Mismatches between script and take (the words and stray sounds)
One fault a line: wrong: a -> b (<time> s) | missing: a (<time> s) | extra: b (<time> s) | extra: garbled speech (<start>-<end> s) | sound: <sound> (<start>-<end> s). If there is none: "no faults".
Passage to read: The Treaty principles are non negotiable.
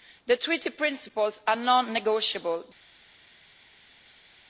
no faults